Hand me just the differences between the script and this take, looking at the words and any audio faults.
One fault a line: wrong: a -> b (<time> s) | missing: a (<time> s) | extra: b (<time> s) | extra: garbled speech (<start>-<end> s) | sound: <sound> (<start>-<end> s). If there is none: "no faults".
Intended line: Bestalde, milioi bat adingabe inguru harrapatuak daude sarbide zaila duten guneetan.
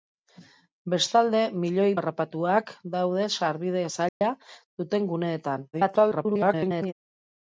missing: bat adingabe inguru (1.9 s)
sound: dropout (4.1-4.2 s)
extra: garbled speech (5.7-6.9 s)